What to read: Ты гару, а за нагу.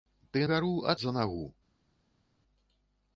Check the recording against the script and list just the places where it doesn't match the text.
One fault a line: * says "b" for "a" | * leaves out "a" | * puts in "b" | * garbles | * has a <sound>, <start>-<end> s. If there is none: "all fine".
all fine